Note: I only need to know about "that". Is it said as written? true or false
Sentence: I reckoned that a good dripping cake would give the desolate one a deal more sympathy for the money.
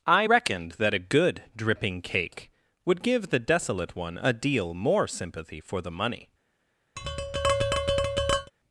true